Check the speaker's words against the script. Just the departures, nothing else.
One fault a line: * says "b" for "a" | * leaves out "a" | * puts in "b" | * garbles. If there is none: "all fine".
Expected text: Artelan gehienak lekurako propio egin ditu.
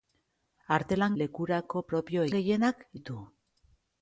* leaves out "gehienak"
* says "gehienak" for "egin"